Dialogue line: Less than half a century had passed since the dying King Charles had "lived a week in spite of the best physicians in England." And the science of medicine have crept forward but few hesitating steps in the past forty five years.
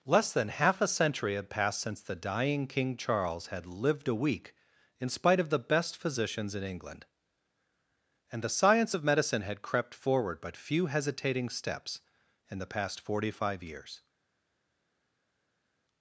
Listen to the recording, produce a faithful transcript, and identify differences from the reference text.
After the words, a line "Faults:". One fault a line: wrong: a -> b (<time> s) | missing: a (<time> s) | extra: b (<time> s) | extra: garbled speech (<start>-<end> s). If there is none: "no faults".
Less than half a century had passed since the dying King Charles had "lived a week in spite of the best physicians in England." And the science of medicine had crept forward but few hesitating steps in the past forty five years.
Faults:
wrong: have -> had (9.4 s)